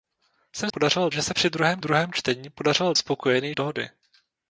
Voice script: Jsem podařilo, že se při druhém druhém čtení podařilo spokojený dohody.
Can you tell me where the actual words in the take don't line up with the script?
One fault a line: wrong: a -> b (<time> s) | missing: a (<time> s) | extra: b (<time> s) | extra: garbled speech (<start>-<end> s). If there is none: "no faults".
no faults